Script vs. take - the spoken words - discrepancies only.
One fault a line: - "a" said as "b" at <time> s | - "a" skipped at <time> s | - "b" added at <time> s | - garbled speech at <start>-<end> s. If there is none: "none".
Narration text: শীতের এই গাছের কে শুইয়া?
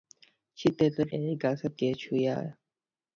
none